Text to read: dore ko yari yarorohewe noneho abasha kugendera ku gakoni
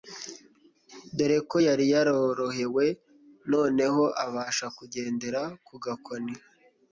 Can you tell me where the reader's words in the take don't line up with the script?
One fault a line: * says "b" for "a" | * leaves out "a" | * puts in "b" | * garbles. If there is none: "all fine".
all fine